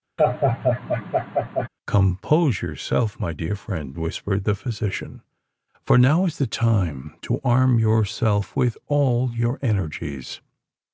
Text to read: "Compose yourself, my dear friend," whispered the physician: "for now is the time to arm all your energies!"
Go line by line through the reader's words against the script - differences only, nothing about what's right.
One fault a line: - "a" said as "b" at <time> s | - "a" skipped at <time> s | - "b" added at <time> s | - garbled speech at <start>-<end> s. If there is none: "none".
- "yourself with" added at 7.8 s